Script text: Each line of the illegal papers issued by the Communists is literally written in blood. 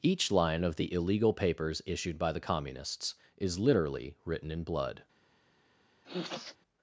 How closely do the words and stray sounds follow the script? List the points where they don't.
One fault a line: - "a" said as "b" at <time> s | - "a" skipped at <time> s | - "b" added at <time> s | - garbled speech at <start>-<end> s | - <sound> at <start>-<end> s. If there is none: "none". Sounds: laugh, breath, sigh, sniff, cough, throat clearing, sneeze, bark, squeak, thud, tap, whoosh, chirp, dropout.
- sniff at 6.0-6.6 s